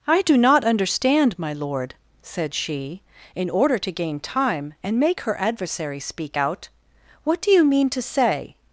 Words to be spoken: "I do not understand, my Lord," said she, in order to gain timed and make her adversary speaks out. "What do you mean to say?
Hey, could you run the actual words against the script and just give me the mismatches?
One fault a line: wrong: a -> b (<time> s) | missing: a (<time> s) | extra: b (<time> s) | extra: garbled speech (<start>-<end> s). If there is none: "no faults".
wrong: timed -> time (4.2 s)
wrong: speaks -> speak (6.0 s)